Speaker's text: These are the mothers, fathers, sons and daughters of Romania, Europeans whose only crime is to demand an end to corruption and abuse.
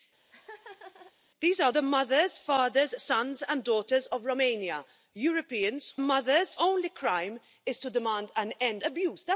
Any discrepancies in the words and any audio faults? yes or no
yes